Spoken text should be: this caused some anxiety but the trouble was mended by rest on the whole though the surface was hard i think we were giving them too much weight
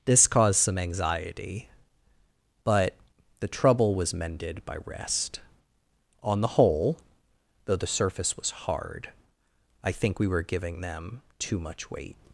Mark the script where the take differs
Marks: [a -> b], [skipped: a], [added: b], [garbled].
this caused some anxiety but the trouble was mended by rest on the whole though the surface was hard i think we were giving them too much weight